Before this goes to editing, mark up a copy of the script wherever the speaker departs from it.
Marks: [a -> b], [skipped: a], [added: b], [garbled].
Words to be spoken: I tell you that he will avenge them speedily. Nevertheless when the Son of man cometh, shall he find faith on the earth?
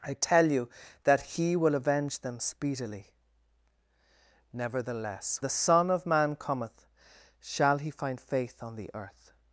I tell you that he will avenge them speedily. Nevertheless [skipped: when] the Son of man cometh, shall he find faith on the earth?